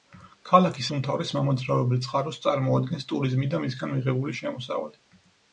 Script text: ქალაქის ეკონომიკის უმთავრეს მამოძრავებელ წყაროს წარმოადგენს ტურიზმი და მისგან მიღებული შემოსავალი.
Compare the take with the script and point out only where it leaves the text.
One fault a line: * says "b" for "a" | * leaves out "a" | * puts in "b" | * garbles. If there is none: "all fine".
* leaves out "ეკონომიკის"